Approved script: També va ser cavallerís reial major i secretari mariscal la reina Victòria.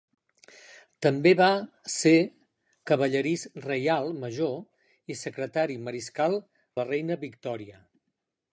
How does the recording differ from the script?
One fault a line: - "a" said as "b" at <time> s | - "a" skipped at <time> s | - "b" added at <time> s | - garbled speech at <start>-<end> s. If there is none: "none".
none